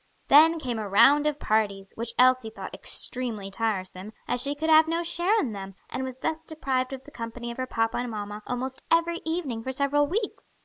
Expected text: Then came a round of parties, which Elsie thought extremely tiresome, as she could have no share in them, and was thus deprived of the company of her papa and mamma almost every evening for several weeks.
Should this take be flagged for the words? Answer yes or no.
no